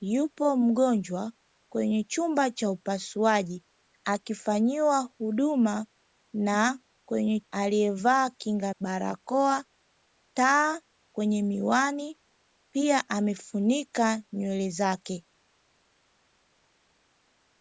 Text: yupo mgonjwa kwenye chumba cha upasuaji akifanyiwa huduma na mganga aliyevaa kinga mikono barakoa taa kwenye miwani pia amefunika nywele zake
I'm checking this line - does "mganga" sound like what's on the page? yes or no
no